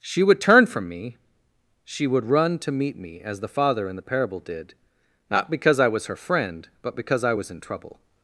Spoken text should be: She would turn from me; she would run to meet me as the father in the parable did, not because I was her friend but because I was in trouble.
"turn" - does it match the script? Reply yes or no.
yes